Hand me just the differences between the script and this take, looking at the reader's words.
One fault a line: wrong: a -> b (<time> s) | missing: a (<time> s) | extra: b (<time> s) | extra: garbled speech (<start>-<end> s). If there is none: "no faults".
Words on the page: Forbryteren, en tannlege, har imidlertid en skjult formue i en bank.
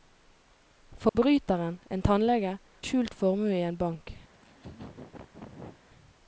missing: har imidlertid en (2.6 s)